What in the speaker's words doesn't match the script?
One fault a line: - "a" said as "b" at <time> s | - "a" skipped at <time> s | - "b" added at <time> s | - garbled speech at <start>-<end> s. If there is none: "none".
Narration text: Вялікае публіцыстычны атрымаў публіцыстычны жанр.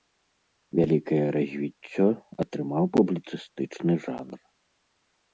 - "публіцыстычны" said as "развіццё" at 1.4 s